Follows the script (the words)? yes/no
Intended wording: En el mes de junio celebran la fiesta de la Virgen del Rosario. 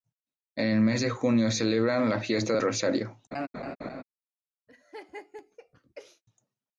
no